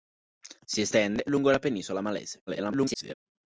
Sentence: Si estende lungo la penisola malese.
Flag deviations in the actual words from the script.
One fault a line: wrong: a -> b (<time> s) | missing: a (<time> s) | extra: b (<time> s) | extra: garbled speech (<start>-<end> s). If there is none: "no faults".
extra: garbled speech (2.5-3.1 s)